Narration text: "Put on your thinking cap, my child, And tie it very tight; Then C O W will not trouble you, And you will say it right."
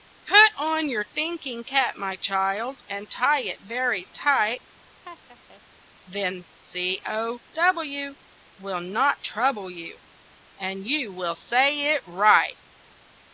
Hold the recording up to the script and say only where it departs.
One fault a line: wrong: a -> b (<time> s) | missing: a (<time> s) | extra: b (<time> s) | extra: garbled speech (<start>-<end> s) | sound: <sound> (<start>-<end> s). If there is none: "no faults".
sound: laugh (5.0-5.6 s)